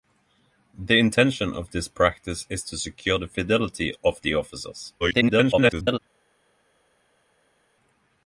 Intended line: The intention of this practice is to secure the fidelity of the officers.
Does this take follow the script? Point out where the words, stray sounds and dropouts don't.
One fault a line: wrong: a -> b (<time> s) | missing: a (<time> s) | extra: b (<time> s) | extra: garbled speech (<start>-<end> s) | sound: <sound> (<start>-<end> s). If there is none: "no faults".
extra: garbled speech (5.0-6.0 s)